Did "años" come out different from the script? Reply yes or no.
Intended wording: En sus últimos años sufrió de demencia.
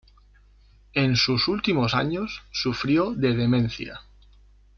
no